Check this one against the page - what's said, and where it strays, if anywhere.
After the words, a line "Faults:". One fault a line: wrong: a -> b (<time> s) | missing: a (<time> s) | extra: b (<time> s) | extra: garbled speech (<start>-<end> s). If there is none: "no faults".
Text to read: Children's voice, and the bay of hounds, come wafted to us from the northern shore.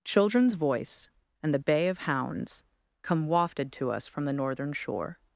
Children's voice, and the bay of hounds, come wafted to us from the northern shore.
Faults:
no faults